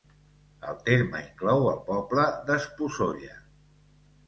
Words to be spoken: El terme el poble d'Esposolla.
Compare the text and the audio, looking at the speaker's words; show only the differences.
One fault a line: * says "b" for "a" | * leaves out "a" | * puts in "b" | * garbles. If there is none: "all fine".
* puts in "inclou"